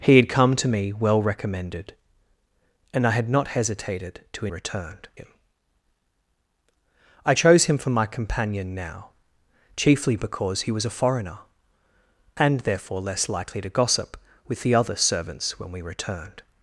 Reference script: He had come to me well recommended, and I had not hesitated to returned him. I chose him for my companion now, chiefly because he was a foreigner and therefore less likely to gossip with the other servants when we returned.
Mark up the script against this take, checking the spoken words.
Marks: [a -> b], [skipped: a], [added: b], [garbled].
He had come to me well recommended, and I had not hesitated to returned him. I chose him for my companion now, chiefly because he was a foreigner and therefore less likely to gossip with the other servants when we returned.